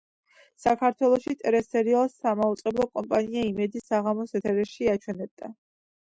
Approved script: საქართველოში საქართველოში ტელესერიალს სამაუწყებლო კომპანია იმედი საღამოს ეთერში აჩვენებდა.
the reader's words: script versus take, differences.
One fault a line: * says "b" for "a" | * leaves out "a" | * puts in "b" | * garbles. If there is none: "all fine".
* leaves out "საქართველოში"